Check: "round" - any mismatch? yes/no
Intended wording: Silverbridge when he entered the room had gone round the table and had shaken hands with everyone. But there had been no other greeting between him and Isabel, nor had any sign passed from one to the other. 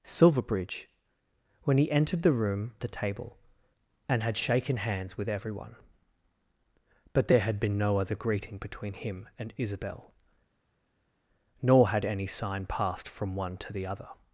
yes